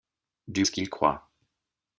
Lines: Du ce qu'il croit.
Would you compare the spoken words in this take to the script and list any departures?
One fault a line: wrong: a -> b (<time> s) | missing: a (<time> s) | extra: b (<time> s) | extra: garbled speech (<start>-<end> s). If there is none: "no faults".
no faults